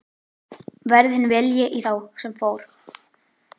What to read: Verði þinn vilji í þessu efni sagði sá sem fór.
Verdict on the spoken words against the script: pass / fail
fail